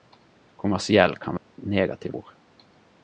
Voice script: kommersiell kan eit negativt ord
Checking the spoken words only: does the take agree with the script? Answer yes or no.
yes